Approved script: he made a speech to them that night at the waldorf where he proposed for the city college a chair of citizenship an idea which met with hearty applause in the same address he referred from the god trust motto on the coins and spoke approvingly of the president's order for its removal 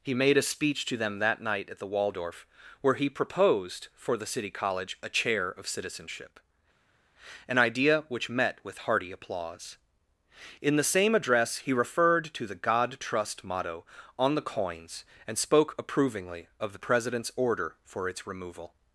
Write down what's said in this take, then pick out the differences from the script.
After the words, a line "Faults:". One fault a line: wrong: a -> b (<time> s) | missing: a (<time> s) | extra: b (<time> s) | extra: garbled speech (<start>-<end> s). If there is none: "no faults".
he made a speech to them that night at the waldorf where he proposed for the city college a chair of citizenship an idea which met with hearty applause in the same address he referred to the god trust motto on the coins and spoke approvingly of the president's order for its removal
Faults:
wrong: from -> to (12.3 s)